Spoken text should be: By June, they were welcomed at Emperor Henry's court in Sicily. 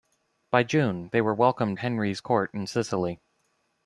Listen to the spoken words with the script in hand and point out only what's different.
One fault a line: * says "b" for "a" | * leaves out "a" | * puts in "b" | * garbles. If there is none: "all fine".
* leaves out "at Emperor"